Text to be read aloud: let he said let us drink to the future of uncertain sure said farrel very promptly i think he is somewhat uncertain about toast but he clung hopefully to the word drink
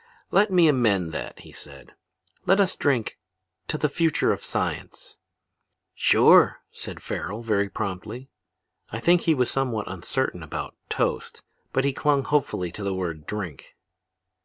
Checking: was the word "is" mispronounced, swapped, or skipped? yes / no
yes